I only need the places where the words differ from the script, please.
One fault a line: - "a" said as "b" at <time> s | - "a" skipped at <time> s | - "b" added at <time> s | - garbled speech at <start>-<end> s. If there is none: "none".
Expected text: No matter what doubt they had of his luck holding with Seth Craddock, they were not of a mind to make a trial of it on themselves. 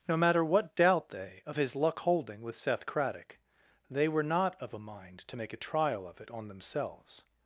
- "had" skipped at 1.4 s